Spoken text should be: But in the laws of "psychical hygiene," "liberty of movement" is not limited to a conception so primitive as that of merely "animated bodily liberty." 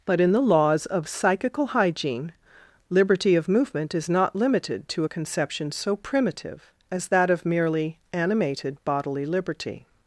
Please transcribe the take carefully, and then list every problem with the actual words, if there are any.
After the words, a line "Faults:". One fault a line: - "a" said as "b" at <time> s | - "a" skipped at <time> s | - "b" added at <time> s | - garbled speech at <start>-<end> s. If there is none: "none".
But in the laws of "psychical hygiene," "liberty of movement" is not limited to a conception so primitive as that of merely "animated bodily liberty."
Faults:
none